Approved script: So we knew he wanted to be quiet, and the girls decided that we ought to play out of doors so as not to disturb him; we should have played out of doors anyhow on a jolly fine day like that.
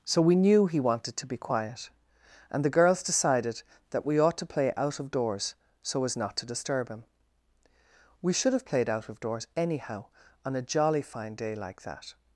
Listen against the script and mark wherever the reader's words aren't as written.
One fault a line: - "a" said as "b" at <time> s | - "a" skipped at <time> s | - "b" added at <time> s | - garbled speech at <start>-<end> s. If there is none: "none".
none